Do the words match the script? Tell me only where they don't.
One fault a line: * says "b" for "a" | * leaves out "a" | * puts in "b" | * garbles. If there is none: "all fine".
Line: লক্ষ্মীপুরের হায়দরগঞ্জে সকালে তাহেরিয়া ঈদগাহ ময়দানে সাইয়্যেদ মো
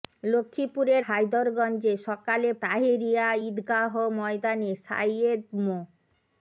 all fine